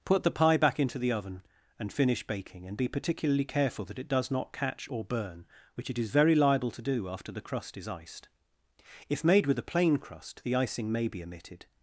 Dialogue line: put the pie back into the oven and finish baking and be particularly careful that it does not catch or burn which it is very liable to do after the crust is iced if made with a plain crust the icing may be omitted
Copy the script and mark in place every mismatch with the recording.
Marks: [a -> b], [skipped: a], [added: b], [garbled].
put the pie back into the oven and finish baking and be particularly careful that it does not catch or burn which it is very liable to do after the crust is iced if made with a plain crust the icing may be omitted